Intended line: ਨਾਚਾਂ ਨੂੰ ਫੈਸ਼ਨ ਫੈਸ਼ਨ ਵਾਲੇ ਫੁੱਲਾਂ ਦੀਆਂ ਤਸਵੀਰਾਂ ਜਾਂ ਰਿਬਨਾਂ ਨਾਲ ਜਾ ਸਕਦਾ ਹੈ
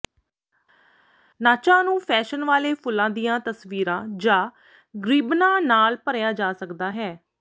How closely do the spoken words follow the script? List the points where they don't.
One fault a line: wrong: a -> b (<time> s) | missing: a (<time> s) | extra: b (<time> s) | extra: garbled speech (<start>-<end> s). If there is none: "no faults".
missing: ਫੈਸ਼ਨ (2.4 s)
extra: ਭਰਿਆ (6.0 s)